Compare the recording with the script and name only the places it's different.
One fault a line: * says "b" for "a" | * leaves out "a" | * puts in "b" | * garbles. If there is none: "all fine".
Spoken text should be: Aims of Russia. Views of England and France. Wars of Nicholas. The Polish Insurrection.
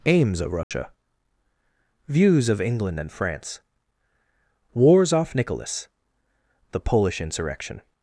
* says "off" for "of"